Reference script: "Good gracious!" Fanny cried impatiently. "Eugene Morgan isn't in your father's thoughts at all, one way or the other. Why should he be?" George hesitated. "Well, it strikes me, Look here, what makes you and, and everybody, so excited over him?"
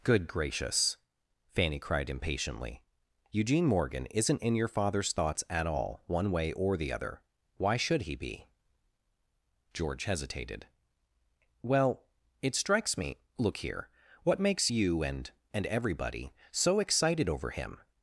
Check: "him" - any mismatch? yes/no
no